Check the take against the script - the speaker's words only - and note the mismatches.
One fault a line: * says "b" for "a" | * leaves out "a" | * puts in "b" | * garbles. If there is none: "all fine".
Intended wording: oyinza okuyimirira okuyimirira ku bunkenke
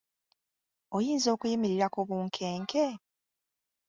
* leaves out "okuyimirira"